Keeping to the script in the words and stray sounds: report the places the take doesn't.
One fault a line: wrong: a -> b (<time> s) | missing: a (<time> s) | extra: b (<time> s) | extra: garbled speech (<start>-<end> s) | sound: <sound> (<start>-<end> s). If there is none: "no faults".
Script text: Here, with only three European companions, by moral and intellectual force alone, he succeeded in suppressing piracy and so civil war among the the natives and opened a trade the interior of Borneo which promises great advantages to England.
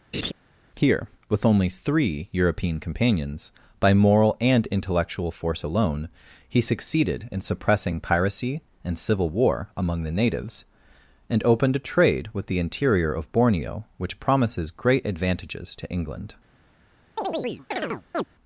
sound: laugh (0.1-0.3 s)
missing: so (9.0 s)
missing: the (10.1 s)
extra: with (12.3 s)
sound: chirp (17.2-18.3 s)